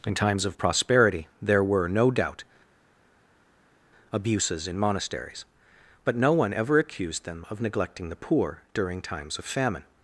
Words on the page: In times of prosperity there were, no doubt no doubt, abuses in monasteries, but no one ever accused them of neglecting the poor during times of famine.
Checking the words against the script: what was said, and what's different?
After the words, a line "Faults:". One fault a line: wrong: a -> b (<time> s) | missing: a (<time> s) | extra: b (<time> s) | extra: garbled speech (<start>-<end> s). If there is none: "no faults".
In times of prosperity there were, no doubt, abuses in monasteries, but no one ever accused them of neglecting the poor during times of famine.
Faults:
missing: no doubt (2.4 s)